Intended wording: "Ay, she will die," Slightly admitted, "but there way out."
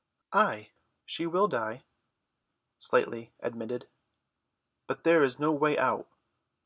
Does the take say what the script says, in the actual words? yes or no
no